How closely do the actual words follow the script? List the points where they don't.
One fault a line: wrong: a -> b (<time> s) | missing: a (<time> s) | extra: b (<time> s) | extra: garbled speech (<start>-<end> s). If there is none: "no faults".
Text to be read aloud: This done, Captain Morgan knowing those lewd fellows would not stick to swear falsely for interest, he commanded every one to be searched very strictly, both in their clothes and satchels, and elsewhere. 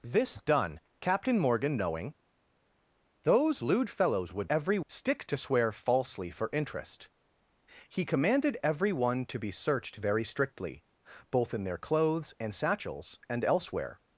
wrong: not -> every (4.5 s)